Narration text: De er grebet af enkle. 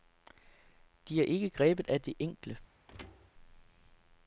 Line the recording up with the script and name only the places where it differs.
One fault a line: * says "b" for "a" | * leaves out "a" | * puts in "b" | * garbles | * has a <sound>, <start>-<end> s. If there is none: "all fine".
* puts in "ikke"
* puts in "det"
* has a thud, 2.9-3.3 s